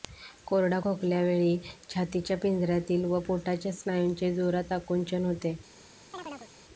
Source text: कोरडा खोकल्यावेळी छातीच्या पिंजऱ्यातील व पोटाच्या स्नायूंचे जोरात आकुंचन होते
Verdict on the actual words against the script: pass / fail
pass